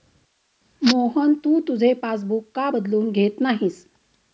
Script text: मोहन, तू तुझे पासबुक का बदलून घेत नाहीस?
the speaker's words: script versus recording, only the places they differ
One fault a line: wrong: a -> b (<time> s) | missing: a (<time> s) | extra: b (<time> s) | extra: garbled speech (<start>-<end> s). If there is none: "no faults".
no faults